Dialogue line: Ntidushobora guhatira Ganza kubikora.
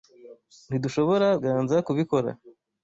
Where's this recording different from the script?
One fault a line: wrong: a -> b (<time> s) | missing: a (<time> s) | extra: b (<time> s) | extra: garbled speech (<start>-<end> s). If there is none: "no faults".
missing: guhatira (1.3 s)